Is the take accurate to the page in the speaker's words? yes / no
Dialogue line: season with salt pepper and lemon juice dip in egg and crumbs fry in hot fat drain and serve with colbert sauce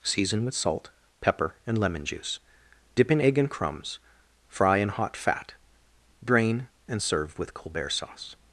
yes